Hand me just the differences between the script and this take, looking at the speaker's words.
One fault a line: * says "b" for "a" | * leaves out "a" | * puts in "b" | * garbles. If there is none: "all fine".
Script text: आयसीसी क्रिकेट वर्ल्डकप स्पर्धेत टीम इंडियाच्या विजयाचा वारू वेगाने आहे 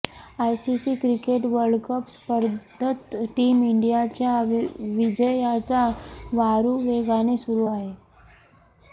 * puts in "सुरू"